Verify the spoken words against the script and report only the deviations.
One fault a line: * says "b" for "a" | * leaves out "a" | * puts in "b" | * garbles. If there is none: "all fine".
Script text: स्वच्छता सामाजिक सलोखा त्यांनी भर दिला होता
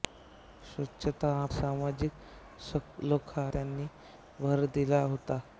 all fine